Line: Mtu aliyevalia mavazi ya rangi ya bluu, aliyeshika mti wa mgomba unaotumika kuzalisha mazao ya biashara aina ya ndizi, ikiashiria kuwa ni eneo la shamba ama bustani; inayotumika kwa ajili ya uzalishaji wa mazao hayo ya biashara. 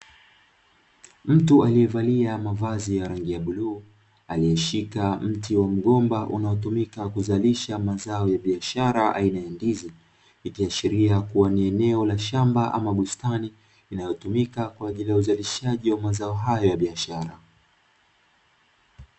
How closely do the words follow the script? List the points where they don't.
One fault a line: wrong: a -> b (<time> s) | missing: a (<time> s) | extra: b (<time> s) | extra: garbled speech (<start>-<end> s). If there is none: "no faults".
no faults